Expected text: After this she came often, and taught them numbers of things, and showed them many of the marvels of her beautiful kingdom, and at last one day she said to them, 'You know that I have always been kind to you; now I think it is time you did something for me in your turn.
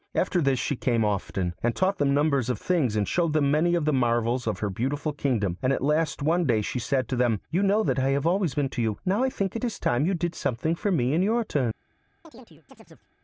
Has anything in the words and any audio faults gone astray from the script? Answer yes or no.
yes